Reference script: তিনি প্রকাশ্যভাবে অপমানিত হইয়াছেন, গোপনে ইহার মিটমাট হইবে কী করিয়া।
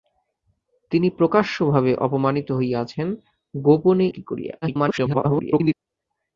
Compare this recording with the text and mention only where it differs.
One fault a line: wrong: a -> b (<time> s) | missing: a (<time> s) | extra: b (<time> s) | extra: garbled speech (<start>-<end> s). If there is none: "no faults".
missing: ইহার মিটমাট হইবে (4.1 s)
extra: garbled speech (4.6-5.7 s)